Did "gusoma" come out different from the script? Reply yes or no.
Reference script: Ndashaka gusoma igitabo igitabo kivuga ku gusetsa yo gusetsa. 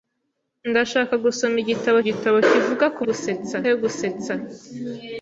no